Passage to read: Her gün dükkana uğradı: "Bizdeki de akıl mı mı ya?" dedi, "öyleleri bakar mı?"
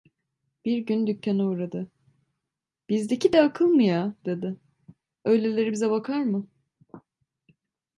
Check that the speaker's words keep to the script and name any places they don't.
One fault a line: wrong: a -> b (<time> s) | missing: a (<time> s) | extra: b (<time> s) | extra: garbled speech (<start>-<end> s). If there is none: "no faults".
wrong: Her -> Bir (0.7 s)
missing: mı (3.8 s)
extra: bize (5.7 s)